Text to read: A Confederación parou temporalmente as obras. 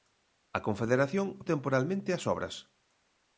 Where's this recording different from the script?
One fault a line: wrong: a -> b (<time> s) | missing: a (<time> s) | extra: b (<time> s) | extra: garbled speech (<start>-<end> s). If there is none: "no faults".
missing: parou (1.3 s)